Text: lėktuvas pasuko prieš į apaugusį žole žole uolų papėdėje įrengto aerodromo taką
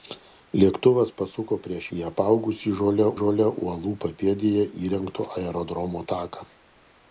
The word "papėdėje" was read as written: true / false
true